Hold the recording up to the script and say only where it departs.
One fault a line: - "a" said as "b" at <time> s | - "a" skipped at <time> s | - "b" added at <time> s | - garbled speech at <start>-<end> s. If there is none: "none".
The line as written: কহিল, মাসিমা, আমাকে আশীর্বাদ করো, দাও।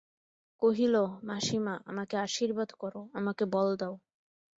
- "আমাকে বল" added at 3.1 s